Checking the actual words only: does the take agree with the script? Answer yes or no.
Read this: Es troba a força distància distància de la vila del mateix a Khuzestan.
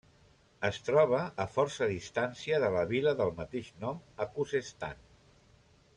no